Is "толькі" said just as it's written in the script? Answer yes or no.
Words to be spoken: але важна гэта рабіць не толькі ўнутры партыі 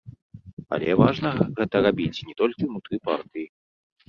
yes